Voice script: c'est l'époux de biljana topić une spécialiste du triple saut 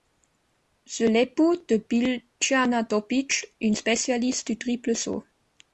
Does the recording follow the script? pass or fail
pass